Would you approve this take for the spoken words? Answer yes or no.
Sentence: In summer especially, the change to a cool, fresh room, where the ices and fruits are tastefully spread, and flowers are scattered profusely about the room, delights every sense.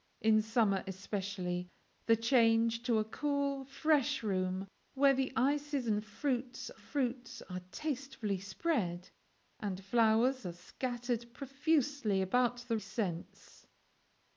no